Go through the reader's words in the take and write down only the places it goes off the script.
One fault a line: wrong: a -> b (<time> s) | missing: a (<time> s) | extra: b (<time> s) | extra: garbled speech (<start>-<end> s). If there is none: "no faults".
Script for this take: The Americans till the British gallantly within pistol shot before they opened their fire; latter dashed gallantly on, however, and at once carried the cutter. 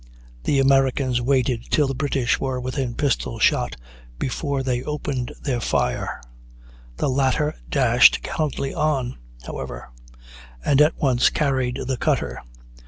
extra: waited (1.2 s)
wrong: gallantly -> were (2.4 s)
extra: the (7.0 s)